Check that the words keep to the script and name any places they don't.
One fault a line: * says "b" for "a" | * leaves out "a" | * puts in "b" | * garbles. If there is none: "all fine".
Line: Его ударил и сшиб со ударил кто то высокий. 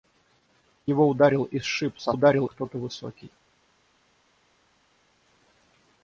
all fine